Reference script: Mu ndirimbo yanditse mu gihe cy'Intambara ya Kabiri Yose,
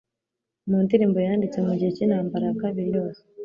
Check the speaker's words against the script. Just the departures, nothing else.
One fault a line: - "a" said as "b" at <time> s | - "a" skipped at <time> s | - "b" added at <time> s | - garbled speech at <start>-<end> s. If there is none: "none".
none